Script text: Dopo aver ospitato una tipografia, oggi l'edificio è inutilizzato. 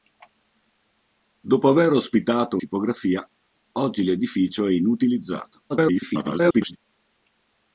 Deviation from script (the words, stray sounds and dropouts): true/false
true